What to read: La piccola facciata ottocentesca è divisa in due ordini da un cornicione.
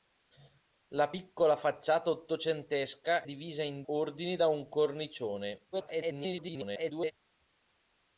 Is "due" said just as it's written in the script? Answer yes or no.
no